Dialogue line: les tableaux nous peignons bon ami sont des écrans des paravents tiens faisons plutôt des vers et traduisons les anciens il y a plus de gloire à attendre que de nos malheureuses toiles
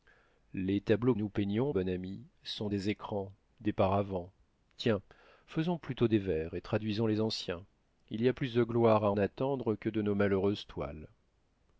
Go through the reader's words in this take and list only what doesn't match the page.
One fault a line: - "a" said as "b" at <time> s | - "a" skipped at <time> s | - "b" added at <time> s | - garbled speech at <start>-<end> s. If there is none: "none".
none